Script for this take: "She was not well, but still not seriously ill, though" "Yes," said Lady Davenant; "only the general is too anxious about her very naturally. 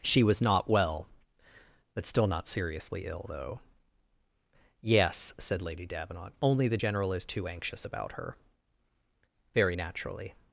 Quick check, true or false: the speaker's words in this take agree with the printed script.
true